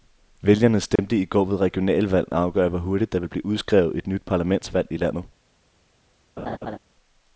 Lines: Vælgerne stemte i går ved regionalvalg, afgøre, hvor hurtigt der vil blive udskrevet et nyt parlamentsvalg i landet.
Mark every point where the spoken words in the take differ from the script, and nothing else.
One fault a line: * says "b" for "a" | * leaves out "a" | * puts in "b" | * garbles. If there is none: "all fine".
all fine